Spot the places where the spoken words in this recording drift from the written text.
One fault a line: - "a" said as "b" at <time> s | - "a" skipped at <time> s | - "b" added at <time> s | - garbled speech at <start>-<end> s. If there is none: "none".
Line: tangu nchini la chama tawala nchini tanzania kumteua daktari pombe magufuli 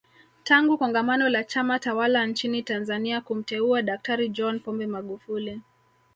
- "nchini" said as "kongamano" at 0.7 s
- "john" added at 4.3 s